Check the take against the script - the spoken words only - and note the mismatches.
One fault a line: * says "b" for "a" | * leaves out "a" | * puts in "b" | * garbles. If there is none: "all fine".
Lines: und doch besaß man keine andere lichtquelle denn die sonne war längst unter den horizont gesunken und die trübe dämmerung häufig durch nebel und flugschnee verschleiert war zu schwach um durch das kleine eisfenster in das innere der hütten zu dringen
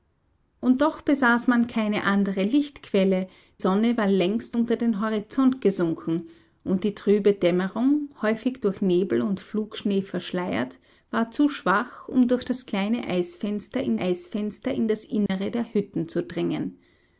* leaves out "denn die"
* puts in "eisfenster in"